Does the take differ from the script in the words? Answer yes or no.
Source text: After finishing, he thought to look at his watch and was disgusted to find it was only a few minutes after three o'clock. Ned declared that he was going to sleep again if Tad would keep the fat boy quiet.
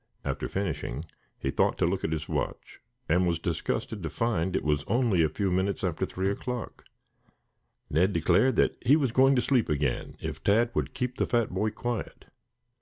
no